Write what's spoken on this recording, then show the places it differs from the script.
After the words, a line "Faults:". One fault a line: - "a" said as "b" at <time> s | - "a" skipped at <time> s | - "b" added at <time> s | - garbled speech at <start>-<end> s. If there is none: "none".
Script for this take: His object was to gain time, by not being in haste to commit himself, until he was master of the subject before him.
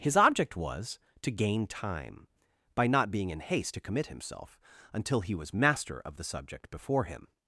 His object was to gain time, by not being in haste to commit himself, until he was master of the subject before him.
Faults:
none